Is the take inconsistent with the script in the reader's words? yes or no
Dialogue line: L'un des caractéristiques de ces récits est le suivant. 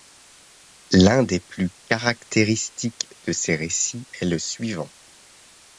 yes